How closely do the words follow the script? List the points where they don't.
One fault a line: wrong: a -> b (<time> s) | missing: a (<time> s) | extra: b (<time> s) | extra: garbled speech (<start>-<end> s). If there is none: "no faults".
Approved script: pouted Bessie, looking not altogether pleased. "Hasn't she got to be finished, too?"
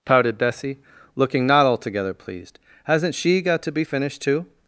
no faults